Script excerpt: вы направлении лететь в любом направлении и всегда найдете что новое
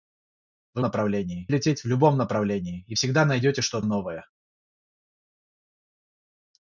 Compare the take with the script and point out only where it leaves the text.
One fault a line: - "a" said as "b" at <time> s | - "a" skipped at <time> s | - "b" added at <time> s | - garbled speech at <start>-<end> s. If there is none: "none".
none